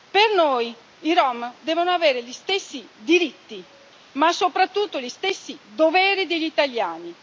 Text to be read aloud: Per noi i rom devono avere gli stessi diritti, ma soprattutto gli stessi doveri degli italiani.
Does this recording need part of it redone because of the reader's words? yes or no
no